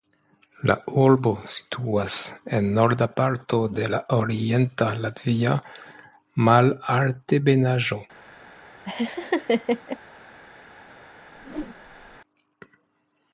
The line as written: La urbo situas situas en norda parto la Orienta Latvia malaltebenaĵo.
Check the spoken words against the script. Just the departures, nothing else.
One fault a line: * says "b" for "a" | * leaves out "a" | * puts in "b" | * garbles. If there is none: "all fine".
* leaves out "situas"
* puts in "de"